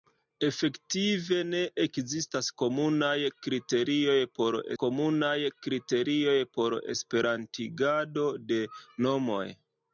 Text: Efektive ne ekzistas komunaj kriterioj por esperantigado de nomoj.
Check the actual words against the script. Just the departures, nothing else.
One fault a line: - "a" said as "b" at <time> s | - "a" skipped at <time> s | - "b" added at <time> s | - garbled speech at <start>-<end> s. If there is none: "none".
- "komunaj kriterioj por" added at 4.8 s